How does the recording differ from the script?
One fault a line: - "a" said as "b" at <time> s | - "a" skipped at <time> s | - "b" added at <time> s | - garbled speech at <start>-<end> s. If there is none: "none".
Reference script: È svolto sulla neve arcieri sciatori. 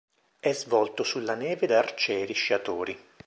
- "da" added at 1.7 s